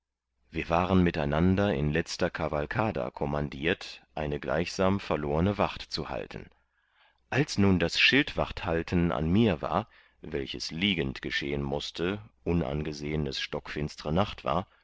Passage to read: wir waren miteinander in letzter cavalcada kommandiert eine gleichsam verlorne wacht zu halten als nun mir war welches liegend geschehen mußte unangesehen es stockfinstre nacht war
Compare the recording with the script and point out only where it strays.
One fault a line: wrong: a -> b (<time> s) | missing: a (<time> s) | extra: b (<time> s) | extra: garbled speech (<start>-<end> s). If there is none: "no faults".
extra: das schildwachthalten an (7.8 s)